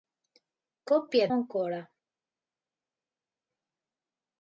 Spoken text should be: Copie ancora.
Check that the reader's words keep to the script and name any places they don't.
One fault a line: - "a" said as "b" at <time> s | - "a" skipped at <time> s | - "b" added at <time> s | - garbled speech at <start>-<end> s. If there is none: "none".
none